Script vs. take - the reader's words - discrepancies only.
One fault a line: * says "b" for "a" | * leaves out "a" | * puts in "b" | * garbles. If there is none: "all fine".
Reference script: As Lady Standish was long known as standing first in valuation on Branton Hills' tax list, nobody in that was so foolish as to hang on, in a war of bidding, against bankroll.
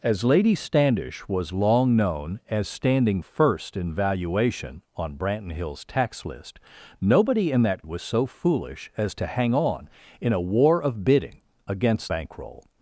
all fine